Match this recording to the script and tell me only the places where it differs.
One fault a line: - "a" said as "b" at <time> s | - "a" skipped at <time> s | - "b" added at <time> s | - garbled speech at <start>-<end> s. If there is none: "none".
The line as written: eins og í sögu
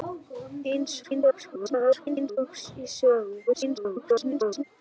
- garbled speech at 1.0-2.4 s
- garbled speech at 3.5-4.6 s